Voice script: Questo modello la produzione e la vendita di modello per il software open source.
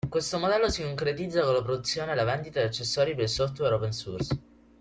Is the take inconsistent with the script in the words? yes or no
yes